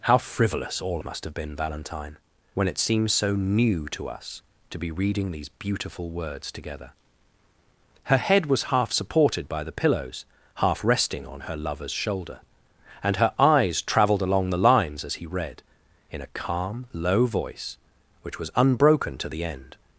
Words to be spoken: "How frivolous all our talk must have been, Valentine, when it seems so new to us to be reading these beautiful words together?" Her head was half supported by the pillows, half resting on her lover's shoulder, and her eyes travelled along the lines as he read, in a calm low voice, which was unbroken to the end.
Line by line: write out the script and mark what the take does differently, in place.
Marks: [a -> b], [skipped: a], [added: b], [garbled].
"How frivolous all [skipped: our talk] must have been, Valentine, when it seems so new to us to be reading these beautiful words together?" Her head was half supported by the pillows, half resting on her lover's shoulder, and her eyes travelled along the lines as he read, in a calm low voice, which was unbroken to the end.